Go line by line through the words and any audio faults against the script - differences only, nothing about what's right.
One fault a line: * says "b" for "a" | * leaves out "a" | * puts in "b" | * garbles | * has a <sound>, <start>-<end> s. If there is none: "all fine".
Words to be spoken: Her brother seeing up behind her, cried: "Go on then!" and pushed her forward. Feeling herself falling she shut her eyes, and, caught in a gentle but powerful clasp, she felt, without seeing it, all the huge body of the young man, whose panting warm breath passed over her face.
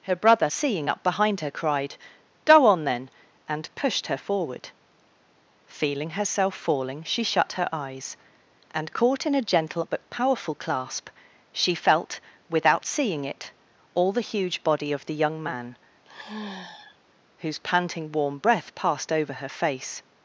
* has a sigh, 16.0-17.0 s